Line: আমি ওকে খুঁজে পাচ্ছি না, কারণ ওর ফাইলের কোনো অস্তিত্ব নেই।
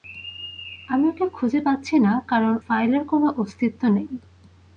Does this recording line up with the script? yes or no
no